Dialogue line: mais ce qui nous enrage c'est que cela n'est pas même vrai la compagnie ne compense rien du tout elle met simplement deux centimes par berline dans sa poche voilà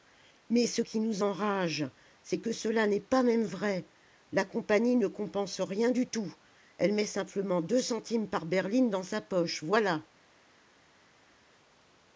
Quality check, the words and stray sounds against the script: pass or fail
pass